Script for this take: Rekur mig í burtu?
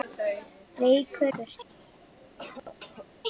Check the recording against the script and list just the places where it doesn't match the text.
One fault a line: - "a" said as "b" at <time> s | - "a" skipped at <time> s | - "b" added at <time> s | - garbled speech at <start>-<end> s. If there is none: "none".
- "mig" skipped at 1.3 s